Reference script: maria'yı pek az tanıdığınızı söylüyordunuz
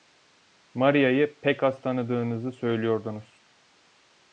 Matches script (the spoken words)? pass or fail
pass